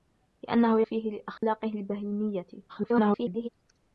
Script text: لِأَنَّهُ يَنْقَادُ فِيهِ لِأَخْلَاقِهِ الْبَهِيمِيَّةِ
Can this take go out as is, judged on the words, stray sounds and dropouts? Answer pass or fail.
fail